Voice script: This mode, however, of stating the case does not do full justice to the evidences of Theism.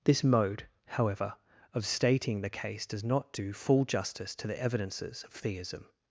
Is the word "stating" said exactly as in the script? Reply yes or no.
yes